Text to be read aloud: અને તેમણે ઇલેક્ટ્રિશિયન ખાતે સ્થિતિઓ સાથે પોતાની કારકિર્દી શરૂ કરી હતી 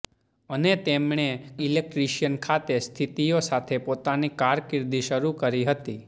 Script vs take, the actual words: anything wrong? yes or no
no